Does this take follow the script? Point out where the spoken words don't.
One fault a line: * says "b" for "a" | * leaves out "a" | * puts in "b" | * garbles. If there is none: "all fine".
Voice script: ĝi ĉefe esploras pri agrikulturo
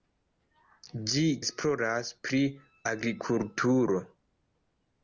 * leaves out "ĉefe"